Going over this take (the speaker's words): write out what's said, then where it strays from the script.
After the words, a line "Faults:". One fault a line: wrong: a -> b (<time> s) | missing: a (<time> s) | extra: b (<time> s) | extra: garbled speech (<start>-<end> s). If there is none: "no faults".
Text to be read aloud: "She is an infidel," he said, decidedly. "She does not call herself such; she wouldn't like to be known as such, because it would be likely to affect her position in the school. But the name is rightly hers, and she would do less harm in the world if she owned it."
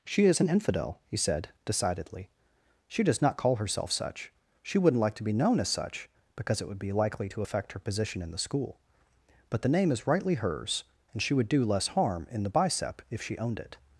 "She is an infidel," he said, decidedly. "She does not call herself such; she wouldn't like to be known as such, because it would be likely to affect her position in the school. But the name is rightly hers, and she would do less harm in the bicep if she owned it."
Faults:
wrong: world -> bicep (12.5 s)